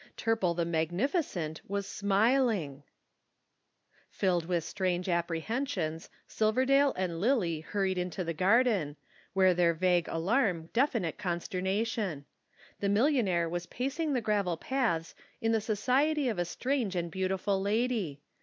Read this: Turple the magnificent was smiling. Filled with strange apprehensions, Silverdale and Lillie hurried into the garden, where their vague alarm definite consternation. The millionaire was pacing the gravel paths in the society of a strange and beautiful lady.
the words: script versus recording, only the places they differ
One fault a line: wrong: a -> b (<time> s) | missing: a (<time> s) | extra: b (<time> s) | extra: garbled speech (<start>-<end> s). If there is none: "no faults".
no faults